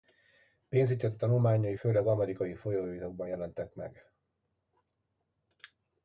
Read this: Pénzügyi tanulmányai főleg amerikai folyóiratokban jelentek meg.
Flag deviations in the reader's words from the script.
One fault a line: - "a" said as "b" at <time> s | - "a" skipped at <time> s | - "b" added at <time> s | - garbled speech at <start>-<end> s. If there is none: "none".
none